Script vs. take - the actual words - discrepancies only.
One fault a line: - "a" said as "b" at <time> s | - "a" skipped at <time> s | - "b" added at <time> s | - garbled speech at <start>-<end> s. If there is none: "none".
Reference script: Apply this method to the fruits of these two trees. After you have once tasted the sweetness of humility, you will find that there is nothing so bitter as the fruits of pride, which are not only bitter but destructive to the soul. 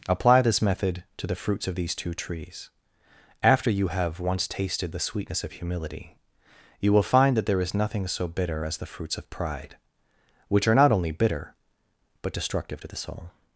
none